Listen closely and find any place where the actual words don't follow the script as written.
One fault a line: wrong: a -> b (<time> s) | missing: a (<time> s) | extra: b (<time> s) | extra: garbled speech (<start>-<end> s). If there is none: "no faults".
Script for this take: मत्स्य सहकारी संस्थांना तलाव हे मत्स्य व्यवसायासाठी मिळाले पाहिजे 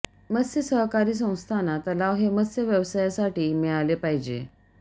no faults